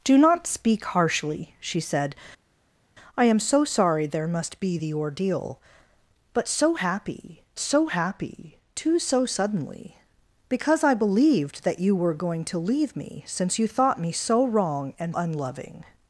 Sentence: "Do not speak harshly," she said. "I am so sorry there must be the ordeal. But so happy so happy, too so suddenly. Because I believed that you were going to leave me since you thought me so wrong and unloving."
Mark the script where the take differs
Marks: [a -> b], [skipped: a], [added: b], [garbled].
"Do not speak harshly," she said. "I am so sorry there must be the ordeal. But so happy so happy, too so suddenly. Because I believed that you were going to leave me since you thought me so wrong and unloving."